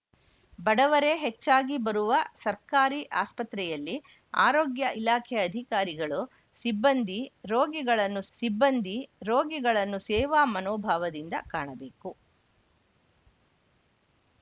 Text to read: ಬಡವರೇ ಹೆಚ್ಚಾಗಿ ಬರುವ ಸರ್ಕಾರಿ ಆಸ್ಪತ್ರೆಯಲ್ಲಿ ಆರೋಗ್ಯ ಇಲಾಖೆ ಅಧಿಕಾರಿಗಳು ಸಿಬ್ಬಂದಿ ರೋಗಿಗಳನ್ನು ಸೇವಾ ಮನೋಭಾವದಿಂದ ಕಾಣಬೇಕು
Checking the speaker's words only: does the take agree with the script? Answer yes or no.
no